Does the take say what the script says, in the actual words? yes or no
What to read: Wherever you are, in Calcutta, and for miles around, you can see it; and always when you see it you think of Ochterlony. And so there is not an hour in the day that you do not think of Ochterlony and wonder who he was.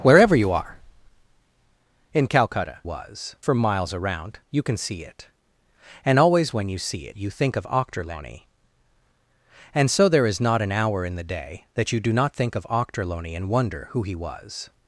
no